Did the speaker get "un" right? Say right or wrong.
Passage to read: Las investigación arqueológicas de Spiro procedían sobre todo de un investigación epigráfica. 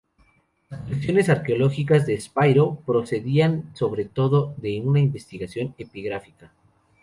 wrong